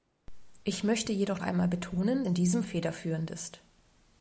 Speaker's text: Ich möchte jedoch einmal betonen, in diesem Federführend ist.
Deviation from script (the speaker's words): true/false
false